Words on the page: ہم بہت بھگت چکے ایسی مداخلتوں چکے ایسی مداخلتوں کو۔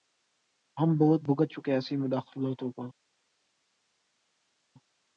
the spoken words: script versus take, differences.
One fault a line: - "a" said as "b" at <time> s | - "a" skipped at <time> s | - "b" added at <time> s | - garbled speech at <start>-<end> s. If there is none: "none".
- "چکے ایسی مداخلتوں" skipped at 2.7 s